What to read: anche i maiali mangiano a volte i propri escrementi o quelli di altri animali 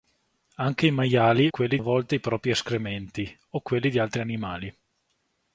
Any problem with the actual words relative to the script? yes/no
yes